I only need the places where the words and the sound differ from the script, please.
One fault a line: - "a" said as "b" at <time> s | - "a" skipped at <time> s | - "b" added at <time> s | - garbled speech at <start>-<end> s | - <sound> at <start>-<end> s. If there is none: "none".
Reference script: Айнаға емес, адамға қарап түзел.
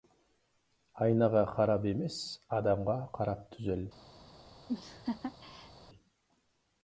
- "қарап" added at 1.5 s
- laugh at 4.7-5.7 s